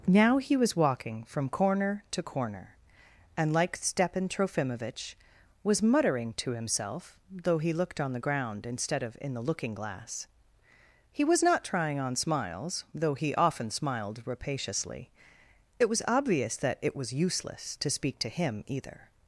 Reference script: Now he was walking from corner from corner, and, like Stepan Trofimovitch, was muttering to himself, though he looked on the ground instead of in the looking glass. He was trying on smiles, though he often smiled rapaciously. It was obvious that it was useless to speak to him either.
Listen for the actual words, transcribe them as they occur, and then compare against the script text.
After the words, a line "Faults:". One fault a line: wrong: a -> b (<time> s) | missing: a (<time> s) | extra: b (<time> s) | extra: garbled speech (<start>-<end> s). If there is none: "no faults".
Now he was walking from corner to corner, and, like Stepan Trofimovitch, was muttering to himself, though he looked on the ground instead of in the looking glass. He was not trying on smiles, though he often smiled rapaciously. It was obvious that it was useless to speak to him either.
Faults:
wrong: from -> to (2.1 s)
extra: not (11.4 s)